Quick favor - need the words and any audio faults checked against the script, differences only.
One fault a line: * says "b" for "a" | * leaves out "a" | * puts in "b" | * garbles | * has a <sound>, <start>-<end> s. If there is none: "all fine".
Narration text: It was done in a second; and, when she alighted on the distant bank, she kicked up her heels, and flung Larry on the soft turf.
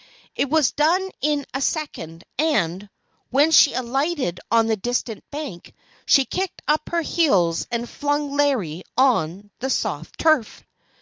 all fine